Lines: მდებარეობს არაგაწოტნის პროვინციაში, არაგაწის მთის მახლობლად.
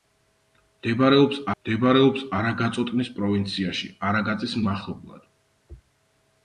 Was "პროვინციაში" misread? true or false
false